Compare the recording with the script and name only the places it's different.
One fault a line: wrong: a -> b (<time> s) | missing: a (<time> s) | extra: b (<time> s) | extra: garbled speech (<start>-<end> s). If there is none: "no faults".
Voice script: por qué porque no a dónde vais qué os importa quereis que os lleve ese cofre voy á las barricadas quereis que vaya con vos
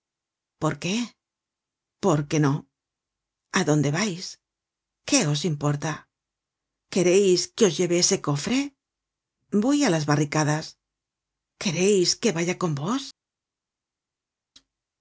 no faults